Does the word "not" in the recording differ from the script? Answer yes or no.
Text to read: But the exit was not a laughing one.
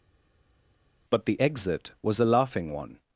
yes